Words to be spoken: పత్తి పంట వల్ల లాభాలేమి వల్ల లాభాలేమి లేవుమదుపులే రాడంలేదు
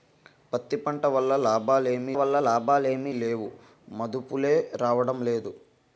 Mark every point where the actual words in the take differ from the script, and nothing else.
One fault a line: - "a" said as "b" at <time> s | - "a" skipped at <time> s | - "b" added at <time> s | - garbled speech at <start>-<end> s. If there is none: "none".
none